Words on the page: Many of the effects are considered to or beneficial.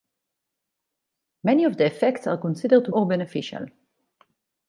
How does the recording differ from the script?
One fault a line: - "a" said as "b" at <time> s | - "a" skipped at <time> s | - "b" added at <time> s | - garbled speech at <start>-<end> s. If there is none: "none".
none